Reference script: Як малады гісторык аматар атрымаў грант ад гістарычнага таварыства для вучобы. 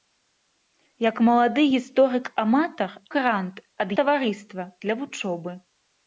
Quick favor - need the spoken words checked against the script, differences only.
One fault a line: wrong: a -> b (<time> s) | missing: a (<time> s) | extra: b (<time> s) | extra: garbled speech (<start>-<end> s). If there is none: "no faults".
missing: атрымаў (2.9 s)
missing: гістарычнага (3.9 s)